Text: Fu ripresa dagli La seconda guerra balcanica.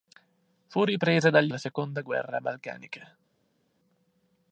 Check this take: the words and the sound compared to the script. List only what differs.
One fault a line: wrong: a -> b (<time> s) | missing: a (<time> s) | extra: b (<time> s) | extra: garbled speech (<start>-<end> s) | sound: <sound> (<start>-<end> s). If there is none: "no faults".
no faults